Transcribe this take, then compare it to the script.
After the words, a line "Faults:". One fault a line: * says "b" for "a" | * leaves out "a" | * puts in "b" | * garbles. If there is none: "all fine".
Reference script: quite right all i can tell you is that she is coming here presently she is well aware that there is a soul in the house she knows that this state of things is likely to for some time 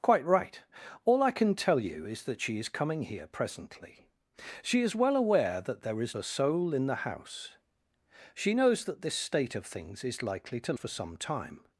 quite right all i can tell you is that she is coming here presently she is well aware that there is a soul in the house she knows that this state of things is likely to for some time
Faults:
all fine